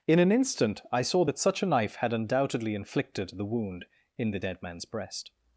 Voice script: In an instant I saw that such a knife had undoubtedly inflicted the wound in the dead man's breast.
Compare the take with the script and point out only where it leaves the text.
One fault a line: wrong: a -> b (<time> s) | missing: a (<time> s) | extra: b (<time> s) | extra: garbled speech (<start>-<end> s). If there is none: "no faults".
no faults